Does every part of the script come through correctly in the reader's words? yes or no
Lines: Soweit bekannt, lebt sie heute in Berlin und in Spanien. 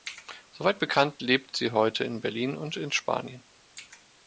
yes